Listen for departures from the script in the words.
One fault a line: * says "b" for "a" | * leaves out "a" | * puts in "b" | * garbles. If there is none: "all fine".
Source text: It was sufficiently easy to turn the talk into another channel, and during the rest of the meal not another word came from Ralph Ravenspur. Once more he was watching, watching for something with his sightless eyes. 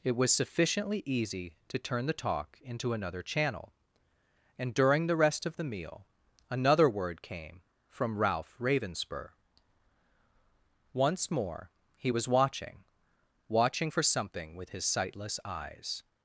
* leaves out "not"